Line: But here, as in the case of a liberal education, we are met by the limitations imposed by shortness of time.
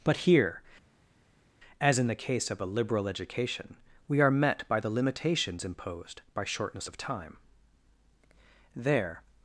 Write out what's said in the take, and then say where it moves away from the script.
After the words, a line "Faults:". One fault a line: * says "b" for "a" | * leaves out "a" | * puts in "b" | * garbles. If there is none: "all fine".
But here, as in the case of a liberal education, we are met by the limitations imposed by shortness of time. There
Faults:
* puts in "There"